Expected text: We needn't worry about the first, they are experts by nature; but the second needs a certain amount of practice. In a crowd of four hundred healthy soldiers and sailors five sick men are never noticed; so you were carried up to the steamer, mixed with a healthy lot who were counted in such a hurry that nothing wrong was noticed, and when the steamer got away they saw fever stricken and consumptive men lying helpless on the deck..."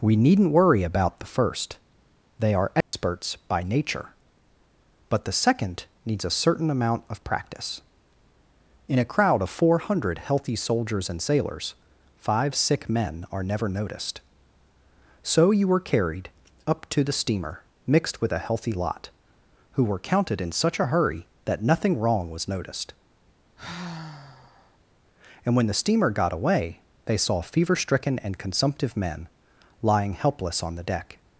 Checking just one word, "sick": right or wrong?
right